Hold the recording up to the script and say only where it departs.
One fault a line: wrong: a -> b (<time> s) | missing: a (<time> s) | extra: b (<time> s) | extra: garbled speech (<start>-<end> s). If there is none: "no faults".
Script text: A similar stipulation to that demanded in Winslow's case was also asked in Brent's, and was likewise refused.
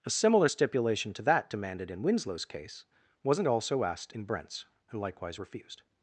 wrong: was -> wasn't (3.2 s)
missing: was (5.0 s)